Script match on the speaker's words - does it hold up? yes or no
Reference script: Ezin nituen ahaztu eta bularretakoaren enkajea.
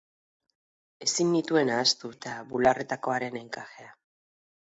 yes